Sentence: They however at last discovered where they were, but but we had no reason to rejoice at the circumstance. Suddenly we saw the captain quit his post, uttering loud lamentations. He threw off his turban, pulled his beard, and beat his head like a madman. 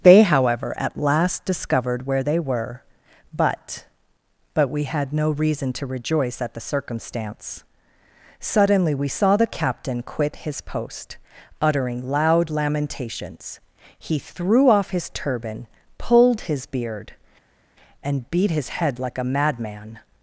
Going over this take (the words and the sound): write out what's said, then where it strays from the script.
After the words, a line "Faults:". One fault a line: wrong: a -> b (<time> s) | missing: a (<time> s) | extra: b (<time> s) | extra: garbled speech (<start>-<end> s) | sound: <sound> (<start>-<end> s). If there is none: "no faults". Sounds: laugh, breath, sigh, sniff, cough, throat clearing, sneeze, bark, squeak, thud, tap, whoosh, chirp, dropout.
They however at last discovered where they were, but but we had no reason to rejoice at the circumstance. Suddenly we saw the captain quit his post, uttering loud lamentations. He threw off his turban, pulled his beard, and beat his head like a madman.
Faults:
no faults